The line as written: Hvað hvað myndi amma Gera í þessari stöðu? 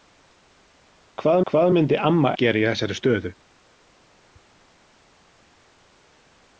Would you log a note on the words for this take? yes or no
no